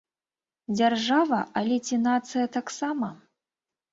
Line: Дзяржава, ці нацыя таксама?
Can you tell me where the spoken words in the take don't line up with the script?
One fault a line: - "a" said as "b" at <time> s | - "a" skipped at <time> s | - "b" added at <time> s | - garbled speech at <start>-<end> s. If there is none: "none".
- "але" added at 1.6 s